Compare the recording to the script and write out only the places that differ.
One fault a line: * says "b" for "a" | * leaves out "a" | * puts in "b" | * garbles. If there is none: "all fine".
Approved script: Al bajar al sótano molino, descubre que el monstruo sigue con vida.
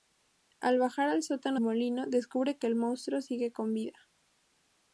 all fine